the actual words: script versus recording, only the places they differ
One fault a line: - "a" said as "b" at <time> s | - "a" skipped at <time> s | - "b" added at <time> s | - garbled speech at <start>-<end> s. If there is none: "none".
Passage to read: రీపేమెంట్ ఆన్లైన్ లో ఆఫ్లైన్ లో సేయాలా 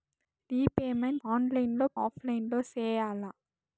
none